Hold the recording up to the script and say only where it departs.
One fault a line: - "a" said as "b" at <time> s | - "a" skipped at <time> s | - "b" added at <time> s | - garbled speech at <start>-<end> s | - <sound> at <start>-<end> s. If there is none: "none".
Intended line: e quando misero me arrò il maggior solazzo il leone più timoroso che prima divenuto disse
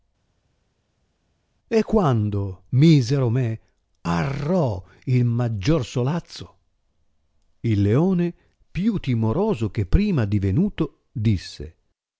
none